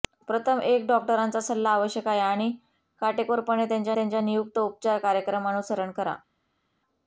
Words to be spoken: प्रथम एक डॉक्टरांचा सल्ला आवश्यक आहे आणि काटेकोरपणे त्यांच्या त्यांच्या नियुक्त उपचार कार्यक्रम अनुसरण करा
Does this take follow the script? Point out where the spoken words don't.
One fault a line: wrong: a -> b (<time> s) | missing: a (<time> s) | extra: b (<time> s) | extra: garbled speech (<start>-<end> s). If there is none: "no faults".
no faults